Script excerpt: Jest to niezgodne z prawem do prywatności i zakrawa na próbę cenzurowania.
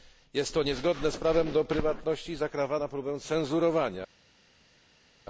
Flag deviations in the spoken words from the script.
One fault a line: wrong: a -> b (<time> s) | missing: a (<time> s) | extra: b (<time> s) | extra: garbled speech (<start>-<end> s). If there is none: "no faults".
no faults